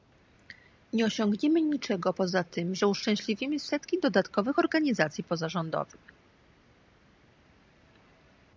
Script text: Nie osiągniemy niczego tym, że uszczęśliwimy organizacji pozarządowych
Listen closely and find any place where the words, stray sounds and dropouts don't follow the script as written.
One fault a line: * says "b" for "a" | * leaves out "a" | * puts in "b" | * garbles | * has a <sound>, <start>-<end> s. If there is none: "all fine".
* puts in "poza"
* puts in "setki dodatkowych"